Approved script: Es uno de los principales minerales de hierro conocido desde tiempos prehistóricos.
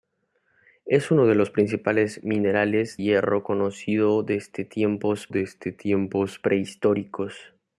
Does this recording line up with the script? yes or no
no